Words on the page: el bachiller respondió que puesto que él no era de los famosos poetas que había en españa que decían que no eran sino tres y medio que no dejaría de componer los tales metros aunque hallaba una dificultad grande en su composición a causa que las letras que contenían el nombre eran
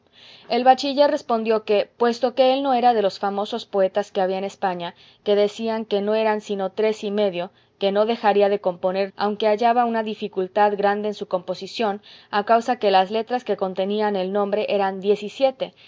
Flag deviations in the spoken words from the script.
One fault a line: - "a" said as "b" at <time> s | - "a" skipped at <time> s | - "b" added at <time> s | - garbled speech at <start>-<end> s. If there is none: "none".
- "los tales metros" skipped at 9.1 s